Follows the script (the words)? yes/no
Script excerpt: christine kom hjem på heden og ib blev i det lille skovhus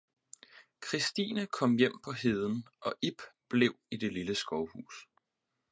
yes